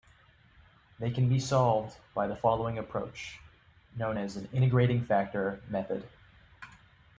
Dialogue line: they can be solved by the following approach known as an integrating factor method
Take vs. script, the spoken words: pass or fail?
pass